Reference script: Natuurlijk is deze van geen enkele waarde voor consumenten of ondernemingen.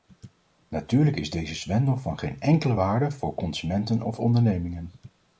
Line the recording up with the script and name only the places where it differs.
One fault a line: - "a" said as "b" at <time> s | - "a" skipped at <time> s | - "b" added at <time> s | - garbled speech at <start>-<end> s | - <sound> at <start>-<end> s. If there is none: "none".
- "zwendel" added at 1.6 s